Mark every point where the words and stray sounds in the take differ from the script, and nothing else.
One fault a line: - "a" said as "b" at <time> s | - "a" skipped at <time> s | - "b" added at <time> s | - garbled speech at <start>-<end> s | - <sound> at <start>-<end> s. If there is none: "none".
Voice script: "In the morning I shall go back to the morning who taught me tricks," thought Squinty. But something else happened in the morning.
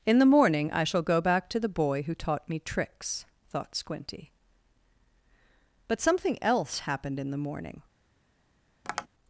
- "morning" said as "boy" at 1.7 s
- tap at 8.8-9.1 s